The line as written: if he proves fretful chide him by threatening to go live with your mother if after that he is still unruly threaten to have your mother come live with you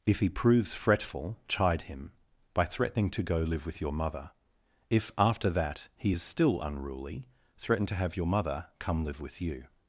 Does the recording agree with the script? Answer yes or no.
yes